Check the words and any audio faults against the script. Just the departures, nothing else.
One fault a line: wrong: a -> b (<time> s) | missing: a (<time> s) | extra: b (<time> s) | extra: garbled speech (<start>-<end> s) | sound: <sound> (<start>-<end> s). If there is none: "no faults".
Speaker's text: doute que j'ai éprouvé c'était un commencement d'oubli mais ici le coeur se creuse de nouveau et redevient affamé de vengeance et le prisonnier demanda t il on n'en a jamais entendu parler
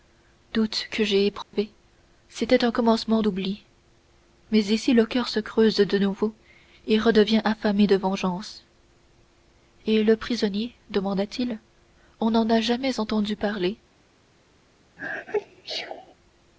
sound: dropout (1.4-1.5 s)
sound: sneeze (15.0-16.1 s)